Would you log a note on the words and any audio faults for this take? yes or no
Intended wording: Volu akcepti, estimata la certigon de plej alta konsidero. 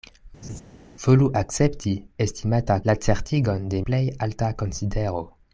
yes